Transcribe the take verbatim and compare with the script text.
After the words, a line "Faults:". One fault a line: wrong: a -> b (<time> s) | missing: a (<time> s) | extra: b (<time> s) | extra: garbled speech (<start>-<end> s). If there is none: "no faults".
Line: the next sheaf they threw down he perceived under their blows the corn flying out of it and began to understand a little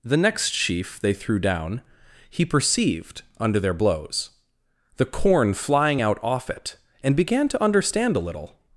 the next sheaf they threw down he perceived under their blows the corn flying out off it and began to understand a little
Faults:
wrong: of -> off (6.2 s)